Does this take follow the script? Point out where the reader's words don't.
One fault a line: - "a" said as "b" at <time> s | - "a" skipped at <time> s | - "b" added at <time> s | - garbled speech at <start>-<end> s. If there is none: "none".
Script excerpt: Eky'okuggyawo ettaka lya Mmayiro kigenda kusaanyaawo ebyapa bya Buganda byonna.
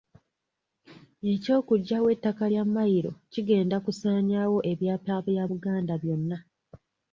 none